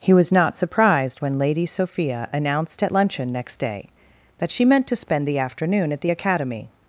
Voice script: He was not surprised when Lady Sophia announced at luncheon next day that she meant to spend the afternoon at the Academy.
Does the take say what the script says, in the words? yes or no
yes